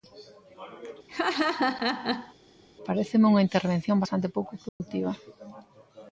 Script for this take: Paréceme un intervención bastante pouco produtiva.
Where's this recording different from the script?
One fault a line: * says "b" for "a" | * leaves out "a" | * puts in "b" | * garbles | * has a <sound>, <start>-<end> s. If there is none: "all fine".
* has a laugh, 1.1-2.3 s
* says "unha" for "un"
* has a dropout, 4.7-4.8 s